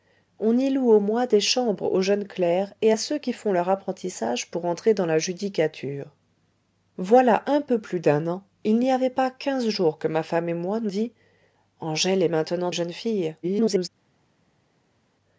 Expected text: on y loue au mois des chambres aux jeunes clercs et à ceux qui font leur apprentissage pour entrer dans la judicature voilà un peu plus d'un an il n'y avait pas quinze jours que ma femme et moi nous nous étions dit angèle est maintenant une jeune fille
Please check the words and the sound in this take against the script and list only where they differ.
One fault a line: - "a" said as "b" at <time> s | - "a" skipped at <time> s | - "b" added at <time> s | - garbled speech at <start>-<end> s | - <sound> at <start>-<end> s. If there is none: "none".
- "nous étions" skipped at 10.9 s
- "une" skipped at 12.7 s
- garbled speech at 13.4-13.9 s